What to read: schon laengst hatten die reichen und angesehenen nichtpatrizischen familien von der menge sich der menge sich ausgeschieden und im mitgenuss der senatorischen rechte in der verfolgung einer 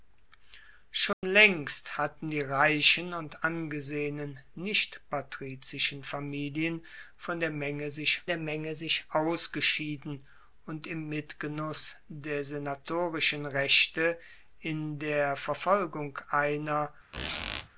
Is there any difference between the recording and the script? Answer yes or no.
no